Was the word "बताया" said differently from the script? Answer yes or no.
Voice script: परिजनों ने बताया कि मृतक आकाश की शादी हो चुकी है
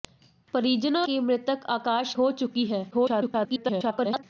yes